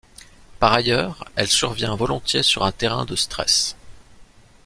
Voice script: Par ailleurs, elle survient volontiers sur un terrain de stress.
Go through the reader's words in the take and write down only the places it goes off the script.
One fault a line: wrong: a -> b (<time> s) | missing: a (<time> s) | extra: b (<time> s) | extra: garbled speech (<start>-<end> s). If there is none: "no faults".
no faults